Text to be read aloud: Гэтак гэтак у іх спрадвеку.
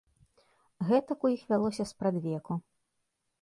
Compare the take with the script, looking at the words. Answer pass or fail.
fail